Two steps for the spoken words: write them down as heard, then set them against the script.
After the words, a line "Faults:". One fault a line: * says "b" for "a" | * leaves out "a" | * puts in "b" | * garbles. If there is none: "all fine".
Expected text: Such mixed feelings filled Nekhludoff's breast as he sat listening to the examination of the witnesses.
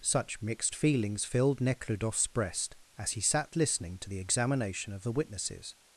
Such mixed feelings filled Nekhludoff's breast as he sat listening to the examination of the witnesses.
Faults:
all fine